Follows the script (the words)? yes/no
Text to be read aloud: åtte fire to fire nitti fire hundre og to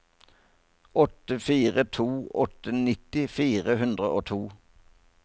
no